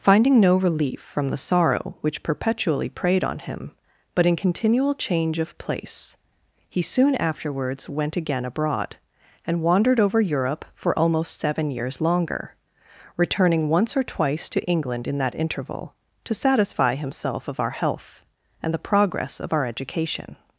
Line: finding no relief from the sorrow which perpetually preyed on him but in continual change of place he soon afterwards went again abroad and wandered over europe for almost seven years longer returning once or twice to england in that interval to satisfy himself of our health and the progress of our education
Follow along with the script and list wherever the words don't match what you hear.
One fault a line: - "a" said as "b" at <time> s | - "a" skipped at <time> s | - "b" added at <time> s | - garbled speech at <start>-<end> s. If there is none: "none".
none